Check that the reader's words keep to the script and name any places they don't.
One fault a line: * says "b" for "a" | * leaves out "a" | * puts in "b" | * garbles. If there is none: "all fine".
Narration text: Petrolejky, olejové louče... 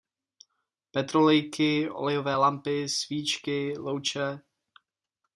* puts in "lampy svíčky"